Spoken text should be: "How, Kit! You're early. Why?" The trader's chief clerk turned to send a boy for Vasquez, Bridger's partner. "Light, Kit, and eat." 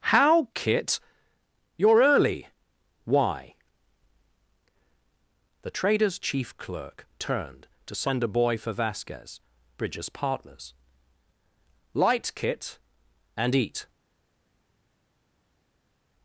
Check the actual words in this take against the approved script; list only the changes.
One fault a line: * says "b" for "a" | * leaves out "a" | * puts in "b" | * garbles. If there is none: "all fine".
* says "partners" for "partner"